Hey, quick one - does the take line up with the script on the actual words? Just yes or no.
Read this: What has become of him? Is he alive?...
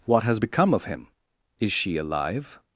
no